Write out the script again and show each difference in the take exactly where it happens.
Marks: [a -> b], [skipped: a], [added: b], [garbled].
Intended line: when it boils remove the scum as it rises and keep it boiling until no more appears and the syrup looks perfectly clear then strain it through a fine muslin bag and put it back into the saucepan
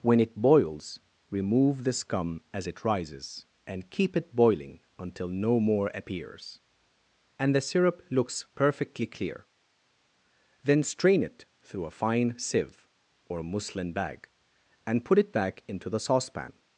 when it boils remove the scum as it rises and keep it boiling until no more appears and the syrup looks perfectly clear then strain it through a fine [added: sieve or] muslin bag and put it back into the saucepan